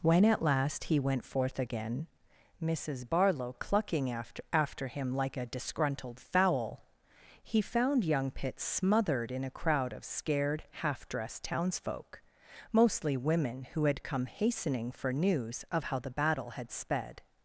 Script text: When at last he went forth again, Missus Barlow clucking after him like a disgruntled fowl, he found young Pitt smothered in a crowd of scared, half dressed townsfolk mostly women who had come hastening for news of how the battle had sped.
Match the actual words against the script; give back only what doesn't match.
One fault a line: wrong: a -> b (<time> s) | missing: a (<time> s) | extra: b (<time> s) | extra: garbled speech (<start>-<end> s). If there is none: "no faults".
extra: after (4.5 s)